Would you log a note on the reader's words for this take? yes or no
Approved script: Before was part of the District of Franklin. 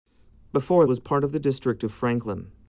no